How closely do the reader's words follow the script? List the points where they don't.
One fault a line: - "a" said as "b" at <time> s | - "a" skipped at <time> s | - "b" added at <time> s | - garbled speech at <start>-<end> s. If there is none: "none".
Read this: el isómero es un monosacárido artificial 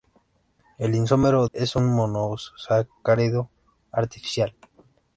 none